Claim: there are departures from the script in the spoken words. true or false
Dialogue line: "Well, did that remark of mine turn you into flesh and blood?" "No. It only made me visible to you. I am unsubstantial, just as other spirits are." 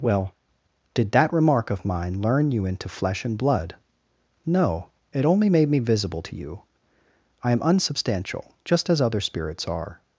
true